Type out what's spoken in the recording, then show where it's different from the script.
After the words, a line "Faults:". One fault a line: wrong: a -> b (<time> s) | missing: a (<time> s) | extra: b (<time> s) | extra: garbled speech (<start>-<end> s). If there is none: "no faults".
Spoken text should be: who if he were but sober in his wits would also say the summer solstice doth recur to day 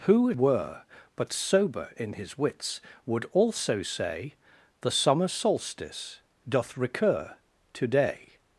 who were but sober in his wits would also say the summer solstice doth recur to day
Faults:
missing: if he (0.3 s)